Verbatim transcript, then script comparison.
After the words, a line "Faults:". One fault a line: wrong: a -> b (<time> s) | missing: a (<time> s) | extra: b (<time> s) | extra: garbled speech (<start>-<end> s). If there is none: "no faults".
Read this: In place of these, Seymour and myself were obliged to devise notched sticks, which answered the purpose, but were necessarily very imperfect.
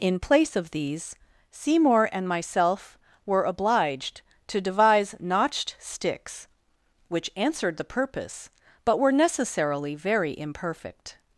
In place of these, Seymour and myself were obliged to devise notched sticks, which answered the purpose, but were necessarily very imperfect.
Faults:
no faults